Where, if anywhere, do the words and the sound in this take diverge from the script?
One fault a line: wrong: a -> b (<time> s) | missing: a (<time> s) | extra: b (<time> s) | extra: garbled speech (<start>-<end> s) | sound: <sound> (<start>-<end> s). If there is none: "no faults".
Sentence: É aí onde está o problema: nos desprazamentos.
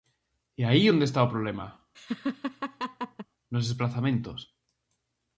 sound: laugh (1.9-3.3 s)